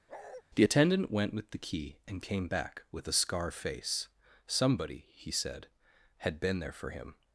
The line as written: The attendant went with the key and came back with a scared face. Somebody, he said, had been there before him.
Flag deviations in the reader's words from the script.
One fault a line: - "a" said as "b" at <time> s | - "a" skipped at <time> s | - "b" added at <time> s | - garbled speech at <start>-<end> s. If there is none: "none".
- "scared" said as "scar" at 3.1 s
- "before" said as "for" at 6.7 s